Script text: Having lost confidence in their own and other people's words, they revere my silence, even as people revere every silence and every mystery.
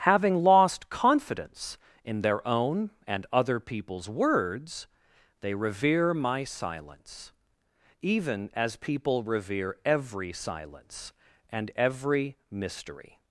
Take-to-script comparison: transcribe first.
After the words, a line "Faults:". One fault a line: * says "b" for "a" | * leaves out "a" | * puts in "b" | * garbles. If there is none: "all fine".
Having lost confidence in their own and other people's words, they revere my silence, even as people revere every silence and every mystery.
Faults:
all fine